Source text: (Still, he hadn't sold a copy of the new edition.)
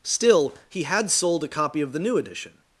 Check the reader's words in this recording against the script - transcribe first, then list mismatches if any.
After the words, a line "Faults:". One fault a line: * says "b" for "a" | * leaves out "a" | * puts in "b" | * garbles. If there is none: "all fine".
(Still, he had sold a copy of the new edition.)
Faults:
* says "had" for "hadn't"